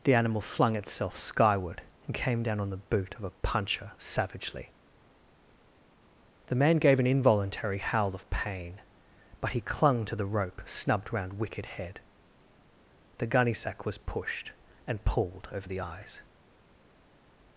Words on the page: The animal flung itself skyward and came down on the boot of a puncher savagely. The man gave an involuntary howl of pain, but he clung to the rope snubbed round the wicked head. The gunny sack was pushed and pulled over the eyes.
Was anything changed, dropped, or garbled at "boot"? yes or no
no